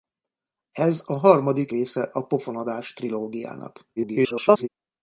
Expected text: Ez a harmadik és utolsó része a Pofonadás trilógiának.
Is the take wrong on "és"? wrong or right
wrong